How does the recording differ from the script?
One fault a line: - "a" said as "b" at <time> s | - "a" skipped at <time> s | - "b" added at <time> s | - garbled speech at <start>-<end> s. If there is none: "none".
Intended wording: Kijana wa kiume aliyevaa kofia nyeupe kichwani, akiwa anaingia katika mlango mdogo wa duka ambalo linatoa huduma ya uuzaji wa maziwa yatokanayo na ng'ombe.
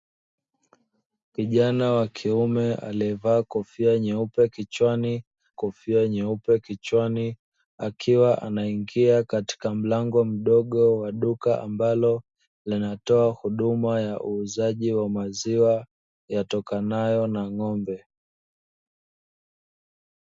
- "kofia nyeupe kichwani" added at 5.5 s